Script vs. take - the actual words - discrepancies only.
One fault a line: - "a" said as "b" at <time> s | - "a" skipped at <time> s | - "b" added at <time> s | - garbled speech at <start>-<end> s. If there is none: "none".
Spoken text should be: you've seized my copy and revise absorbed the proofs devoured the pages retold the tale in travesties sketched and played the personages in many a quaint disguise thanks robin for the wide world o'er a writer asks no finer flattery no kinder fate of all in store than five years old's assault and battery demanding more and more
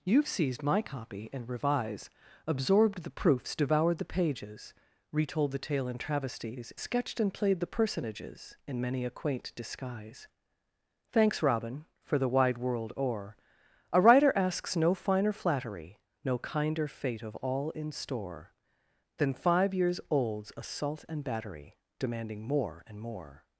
none